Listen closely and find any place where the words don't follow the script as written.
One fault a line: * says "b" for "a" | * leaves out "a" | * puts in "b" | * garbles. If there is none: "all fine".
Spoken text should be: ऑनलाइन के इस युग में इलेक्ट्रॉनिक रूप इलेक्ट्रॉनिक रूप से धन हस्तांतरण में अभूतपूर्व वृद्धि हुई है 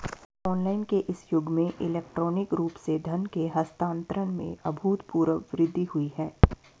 * leaves out "इलेक्ट्रॉनिक रूप"
* puts in "के"